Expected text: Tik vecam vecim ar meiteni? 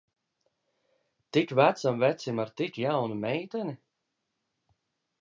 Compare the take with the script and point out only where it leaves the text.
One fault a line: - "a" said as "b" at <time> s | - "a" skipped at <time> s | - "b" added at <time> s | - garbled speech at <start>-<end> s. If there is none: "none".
- "tik jaunu" added at 2.6 s